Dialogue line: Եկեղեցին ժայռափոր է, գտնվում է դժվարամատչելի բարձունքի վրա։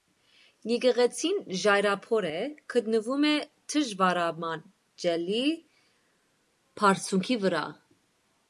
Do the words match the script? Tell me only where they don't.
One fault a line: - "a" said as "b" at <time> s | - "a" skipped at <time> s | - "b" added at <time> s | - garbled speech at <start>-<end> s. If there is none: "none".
none